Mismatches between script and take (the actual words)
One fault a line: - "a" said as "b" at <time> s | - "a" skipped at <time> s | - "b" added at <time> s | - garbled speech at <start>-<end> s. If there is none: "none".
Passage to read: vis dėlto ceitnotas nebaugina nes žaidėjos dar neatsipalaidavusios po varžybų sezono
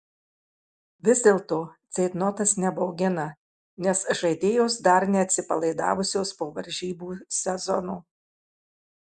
none